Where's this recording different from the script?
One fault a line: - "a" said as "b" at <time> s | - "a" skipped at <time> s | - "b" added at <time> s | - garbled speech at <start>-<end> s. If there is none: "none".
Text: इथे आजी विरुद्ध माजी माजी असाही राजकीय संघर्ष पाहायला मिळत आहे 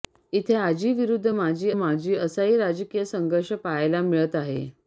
none